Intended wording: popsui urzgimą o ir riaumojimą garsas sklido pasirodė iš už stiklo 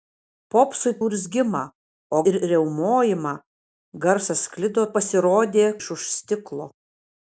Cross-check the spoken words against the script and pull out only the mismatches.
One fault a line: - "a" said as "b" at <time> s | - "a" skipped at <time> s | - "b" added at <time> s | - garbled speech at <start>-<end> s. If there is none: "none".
none